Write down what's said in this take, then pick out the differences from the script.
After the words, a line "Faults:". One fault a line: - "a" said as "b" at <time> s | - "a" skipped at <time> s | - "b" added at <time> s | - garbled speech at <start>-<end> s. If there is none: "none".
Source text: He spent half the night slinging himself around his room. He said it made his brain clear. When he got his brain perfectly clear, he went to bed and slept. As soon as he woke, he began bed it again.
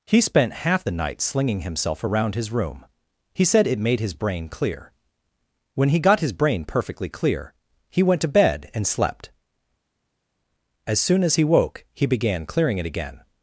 He spent half the night slinging himself around his room. He said it made his brain clear. When he got his brain perfectly clear, he went to bed and slept. As soon as he woke, he began clearing it again.
Faults:
- "bed" said as "clearing" at 12.5 s